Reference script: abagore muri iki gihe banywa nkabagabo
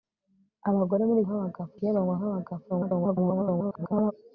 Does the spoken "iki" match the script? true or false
false